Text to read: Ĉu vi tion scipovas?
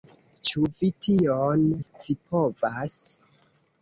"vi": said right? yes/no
yes